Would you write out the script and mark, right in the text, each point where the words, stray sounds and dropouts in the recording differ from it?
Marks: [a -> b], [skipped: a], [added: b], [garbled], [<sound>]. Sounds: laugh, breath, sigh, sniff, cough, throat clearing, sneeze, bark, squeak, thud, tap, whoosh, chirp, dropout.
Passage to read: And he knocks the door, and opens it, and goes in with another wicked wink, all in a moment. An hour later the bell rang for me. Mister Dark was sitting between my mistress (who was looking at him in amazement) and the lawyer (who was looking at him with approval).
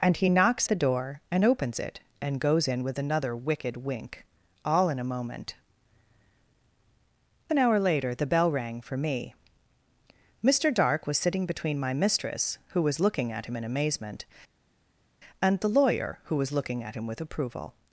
And he knocks the door, and opens it, and goes in with another wicked wink, all in a moment. An hour later the bell rang for me. Mister Dark was sitting between my mistress (who was looking at him in amazement) and the lawyer (who was looking at him with approval).